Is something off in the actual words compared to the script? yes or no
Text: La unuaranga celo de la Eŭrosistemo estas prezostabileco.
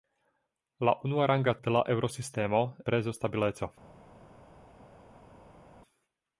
yes